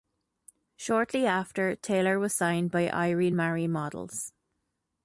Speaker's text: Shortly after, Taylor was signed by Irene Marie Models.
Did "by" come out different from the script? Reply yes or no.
no